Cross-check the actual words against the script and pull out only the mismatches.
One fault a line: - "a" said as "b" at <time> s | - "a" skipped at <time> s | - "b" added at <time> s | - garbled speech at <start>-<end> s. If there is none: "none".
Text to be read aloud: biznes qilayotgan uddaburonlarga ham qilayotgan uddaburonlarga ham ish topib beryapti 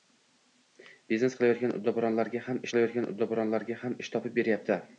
none